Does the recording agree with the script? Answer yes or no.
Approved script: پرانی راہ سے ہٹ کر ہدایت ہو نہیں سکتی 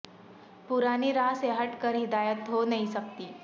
yes